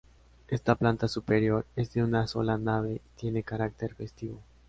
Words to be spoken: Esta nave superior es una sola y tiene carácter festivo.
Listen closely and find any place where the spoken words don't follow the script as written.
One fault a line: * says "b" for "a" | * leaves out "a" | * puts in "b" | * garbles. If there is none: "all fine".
* says "planta" for "nave"
* puts in "de"
* puts in "nave"